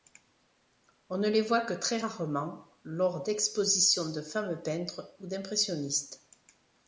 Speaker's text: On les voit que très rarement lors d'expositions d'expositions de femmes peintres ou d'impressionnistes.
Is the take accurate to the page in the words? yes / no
no